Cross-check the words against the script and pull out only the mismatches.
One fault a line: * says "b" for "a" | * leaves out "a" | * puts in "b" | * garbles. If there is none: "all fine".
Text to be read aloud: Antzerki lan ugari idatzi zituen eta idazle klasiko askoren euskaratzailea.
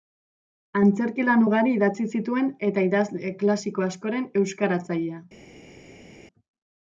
all fine